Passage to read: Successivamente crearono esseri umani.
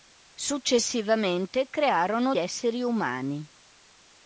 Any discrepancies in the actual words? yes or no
no